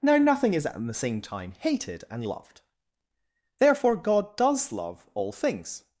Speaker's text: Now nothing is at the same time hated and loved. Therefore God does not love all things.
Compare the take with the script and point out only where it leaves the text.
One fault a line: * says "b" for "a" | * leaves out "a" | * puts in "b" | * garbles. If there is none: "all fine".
* leaves out "not"